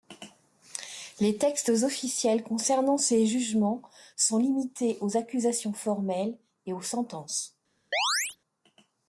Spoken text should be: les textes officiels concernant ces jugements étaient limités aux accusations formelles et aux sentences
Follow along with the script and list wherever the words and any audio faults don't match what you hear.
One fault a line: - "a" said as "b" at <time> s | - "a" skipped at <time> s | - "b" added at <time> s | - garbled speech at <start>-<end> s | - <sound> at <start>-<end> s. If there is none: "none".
- "étaient" said as "sont" at 4.2 s
- chirp at 7.9-8.4 s